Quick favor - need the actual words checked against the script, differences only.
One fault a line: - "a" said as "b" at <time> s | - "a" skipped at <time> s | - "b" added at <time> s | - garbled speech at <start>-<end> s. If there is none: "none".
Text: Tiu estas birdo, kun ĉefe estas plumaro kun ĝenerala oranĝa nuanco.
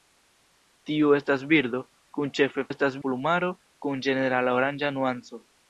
none